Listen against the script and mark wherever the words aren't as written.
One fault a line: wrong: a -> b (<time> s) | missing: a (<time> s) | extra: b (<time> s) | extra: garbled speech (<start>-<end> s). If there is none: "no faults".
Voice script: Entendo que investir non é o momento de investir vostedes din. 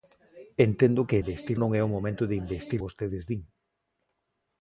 no faults